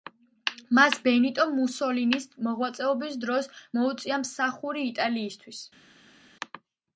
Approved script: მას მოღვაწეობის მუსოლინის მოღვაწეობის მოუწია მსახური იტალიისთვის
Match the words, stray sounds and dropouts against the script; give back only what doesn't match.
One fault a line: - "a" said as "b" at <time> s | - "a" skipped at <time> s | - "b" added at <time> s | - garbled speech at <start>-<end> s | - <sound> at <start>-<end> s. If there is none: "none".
- "მოღვაწეობის" said as "ბენიტო" at 1.1 s
- "დროს" added at 3.3 s